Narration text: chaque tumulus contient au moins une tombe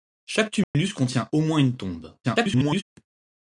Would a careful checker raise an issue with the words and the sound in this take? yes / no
yes